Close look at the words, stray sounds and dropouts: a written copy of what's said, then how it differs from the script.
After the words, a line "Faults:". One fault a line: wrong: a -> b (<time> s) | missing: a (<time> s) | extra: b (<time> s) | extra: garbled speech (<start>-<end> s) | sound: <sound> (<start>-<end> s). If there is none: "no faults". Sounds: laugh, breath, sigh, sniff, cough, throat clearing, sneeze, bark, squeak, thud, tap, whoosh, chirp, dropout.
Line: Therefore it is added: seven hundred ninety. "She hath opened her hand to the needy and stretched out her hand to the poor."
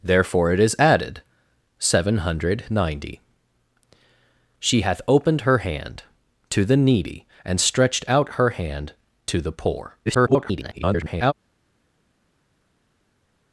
Therefore it is added: seven hundred ninety. "She hath opened her hand to the needy and stretched out her hand to the poor." [garbled]
Faults:
extra: garbled speech (10.1-11.3 s)